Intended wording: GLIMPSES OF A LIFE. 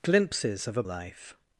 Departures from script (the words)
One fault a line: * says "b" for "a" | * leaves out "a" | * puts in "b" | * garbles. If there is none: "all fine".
all fine